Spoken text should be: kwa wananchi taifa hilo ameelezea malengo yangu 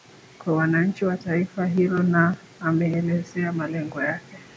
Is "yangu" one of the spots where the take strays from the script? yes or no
yes